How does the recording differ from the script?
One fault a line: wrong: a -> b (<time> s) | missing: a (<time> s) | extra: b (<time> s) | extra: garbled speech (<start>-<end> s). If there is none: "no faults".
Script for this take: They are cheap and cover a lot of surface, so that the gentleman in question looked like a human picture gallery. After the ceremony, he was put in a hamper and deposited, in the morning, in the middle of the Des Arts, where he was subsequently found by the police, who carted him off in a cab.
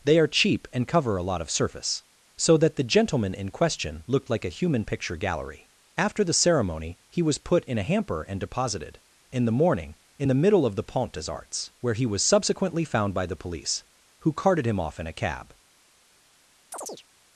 extra: Pont (10.8 s)